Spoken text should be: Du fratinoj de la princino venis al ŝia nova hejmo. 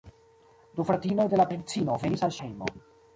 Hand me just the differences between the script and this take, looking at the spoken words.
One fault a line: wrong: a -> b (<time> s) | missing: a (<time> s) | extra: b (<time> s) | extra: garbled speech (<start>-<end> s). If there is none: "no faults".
missing: ŝia nova (2.4 s)